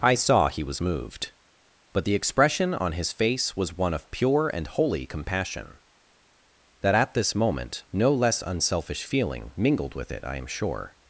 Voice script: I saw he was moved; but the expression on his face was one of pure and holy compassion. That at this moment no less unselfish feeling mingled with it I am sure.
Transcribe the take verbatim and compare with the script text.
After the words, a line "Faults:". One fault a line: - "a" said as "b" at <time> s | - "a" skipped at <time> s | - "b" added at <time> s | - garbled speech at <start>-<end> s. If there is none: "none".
I saw he was moved; but the expression on his face was one of pure and holy compassion. That at this moment no less unselfish feeling mingled with it I am sure.
Faults:
none